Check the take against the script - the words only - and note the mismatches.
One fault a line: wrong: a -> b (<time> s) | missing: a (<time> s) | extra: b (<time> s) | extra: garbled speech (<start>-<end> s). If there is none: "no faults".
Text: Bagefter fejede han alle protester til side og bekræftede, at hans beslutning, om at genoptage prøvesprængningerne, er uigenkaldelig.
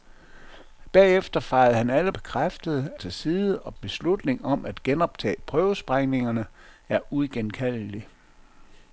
wrong: protester -> bekræftede (2.1 s)
missing: bekræftede at hans (3.8 s)